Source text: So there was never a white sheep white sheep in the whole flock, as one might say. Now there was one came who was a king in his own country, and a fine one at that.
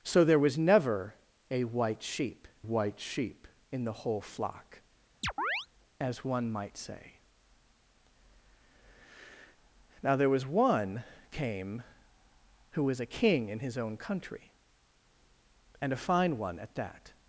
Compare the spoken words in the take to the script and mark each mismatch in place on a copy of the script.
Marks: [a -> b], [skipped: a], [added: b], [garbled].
So there was never a white sheep white sheep in the whole flock, as one might say. Now there was one came who was a king in his own country, and a fine one at that.